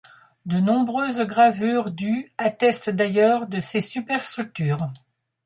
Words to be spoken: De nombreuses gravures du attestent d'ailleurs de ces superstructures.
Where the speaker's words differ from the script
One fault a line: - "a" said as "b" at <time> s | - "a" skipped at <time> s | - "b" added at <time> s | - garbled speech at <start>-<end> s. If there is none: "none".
none